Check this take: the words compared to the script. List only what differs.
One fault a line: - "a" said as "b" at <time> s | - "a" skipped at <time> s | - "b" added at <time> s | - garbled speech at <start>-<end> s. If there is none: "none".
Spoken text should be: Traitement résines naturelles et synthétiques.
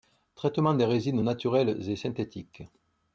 - "des" added at 0.7 s